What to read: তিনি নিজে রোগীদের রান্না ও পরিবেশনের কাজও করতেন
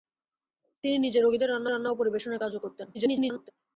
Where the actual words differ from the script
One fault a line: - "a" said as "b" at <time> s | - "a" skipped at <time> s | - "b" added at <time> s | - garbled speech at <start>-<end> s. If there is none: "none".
- "রান্না" added at 1.7 s
- garbled speech at 2.9-3.5 s